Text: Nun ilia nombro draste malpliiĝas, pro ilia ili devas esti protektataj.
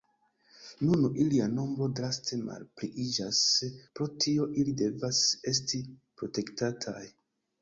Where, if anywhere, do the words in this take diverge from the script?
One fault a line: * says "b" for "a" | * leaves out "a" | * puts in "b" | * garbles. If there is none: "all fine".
* says "tio" for "ilia"